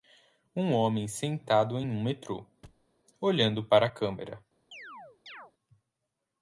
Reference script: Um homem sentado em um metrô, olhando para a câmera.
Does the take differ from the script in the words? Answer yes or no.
no